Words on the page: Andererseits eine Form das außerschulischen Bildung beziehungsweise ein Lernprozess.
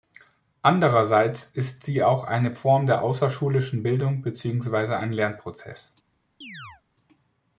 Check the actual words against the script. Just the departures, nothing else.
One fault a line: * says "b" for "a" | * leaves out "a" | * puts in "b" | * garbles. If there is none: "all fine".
* puts in "ist sie auch"
* says "der" for "das"